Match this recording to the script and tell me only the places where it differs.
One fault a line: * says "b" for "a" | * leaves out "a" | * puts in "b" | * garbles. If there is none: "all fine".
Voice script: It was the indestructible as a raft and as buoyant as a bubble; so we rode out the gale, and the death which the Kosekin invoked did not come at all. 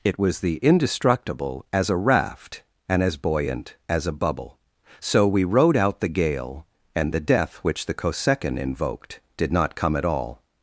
all fine